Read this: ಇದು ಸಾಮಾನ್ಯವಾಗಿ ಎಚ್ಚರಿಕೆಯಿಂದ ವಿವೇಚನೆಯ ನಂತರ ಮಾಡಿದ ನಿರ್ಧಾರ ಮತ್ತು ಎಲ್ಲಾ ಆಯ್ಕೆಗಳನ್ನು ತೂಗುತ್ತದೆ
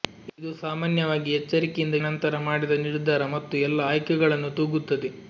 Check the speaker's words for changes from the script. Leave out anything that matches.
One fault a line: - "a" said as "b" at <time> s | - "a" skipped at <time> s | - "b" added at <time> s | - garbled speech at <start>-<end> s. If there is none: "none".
- "ವಿವೇಚನೆಯ" skipped at 2.0 s